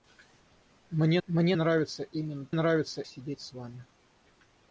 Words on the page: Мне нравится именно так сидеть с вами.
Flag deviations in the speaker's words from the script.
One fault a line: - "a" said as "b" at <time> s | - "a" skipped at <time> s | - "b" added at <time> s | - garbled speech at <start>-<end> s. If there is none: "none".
- "мне" added at 1.3 s
- "так" said as "нравится" at 2.5 s